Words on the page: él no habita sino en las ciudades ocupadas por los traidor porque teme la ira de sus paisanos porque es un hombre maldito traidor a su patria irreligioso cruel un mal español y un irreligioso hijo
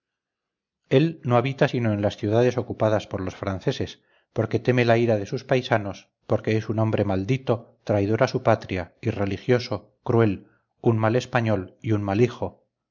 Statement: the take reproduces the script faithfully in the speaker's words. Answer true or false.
false